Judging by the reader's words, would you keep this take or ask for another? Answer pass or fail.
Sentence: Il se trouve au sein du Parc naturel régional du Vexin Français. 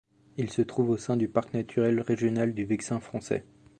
pass